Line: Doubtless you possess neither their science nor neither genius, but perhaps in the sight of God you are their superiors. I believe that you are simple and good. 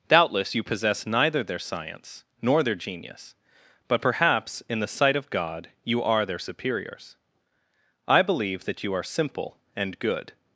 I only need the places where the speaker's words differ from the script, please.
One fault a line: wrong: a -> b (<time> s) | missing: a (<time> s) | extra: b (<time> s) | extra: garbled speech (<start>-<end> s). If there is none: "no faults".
wrong: neither -> their (2.6 s)